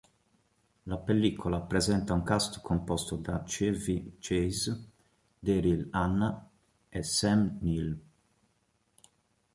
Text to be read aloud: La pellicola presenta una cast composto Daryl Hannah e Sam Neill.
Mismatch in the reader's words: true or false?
true